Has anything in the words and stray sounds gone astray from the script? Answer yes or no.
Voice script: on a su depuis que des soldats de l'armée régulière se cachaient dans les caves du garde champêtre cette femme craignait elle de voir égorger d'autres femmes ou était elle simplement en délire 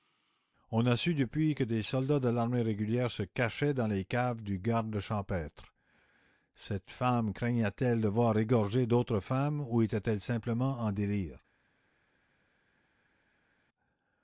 no